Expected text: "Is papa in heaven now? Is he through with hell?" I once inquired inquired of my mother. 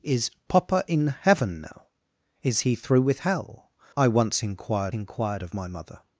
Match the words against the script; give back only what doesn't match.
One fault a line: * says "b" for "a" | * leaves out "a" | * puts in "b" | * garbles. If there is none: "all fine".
all fine